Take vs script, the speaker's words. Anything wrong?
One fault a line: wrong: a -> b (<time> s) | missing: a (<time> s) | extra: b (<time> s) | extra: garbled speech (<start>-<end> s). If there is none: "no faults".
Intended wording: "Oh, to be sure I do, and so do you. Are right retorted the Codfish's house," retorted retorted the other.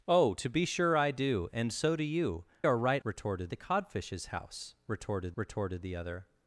no faults